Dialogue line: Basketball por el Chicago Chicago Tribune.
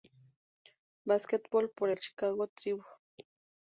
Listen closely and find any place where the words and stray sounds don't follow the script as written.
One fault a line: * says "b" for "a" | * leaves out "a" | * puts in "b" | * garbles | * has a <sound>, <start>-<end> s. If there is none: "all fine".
* leaves out "Chicago"